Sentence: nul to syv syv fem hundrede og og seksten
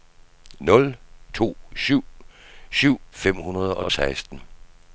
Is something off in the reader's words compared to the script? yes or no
no